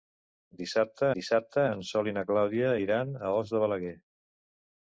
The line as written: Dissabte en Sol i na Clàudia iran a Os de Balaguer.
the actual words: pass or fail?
fail